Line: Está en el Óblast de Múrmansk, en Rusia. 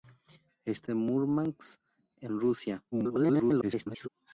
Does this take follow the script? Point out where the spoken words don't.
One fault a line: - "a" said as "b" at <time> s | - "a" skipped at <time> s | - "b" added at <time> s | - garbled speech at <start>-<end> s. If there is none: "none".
- "en el Óblast" skipped at 0.9 s
- garbled speech at 2.9-4.1 s